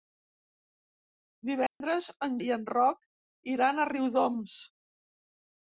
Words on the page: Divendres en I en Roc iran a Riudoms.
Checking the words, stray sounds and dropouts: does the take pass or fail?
fail